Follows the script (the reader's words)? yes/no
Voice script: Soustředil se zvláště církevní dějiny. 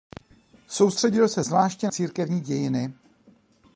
yes